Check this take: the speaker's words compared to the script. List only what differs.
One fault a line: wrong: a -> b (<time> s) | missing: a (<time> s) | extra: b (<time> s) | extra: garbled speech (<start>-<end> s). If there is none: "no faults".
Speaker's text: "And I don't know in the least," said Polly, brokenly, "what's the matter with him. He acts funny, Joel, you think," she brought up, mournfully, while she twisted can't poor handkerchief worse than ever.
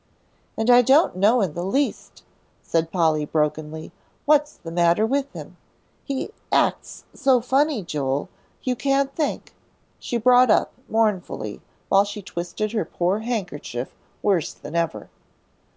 extra: so (7.1 s)
extra: can't (8.8 s)
wrong: can't -> her (12.7 s)